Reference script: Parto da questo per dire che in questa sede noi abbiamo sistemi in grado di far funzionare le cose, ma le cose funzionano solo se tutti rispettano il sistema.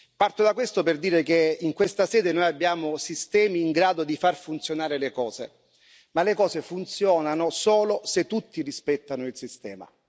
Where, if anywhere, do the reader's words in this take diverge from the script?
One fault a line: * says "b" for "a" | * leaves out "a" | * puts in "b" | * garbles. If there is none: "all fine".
all fine